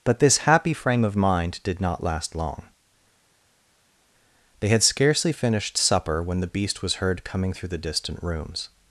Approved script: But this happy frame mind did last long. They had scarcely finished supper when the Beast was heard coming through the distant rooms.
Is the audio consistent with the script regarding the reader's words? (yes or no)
no